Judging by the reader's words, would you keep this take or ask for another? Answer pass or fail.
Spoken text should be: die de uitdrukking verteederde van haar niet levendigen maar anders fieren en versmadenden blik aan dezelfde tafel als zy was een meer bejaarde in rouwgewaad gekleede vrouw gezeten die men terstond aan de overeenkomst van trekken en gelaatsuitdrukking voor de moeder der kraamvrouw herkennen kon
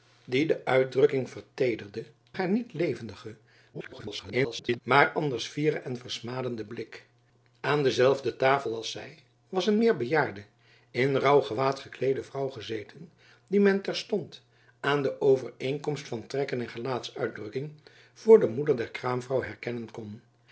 fail